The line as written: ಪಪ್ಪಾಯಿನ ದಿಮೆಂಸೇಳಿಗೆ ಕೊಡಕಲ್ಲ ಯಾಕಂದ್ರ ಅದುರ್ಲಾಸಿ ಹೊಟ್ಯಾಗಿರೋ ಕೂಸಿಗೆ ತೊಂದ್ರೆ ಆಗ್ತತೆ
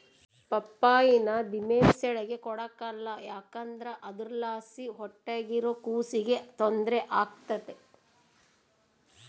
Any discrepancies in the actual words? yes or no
no